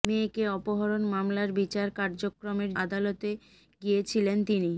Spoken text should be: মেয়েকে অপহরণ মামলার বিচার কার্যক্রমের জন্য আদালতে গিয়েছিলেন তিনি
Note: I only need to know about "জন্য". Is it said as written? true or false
false